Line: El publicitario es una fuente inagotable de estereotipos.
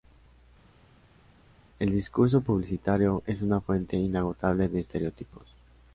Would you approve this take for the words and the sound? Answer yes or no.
no